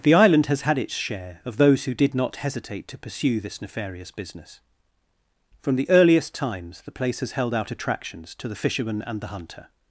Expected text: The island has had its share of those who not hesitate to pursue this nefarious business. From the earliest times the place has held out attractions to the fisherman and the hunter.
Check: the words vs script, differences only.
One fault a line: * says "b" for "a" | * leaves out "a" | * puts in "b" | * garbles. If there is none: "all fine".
* puts in "did"